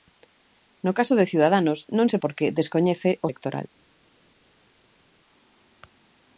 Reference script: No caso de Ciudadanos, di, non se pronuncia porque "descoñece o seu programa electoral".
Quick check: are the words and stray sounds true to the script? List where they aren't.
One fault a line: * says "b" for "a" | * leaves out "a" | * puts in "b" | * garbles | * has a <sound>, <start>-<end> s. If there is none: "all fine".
* leaves out "di"
* leaves out "pronuncia"
* leaves out "seu programa"